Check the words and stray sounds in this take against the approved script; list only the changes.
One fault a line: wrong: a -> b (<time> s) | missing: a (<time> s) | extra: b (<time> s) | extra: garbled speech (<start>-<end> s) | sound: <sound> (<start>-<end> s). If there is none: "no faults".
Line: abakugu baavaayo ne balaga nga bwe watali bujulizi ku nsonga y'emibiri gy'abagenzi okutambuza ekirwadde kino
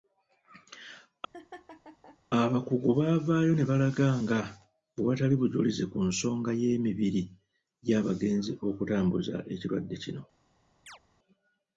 sound: laugh (1.3-2.2 s)
sound: chirp (10.9-11.0 s)